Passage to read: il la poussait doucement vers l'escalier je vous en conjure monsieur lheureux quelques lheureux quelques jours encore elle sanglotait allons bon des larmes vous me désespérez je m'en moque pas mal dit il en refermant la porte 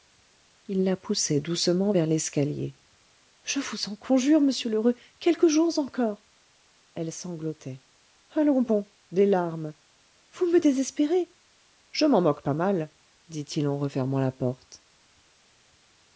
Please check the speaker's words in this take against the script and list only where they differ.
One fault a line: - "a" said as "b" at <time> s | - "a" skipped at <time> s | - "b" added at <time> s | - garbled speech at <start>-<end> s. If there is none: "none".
- "lheureux quelques" skipped at 5.5 s